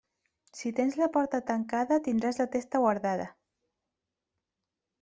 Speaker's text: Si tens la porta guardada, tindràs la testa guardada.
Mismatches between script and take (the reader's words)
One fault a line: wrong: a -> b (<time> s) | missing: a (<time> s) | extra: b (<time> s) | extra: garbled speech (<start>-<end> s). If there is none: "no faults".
wrong: guardada -> tancada (1.5 s)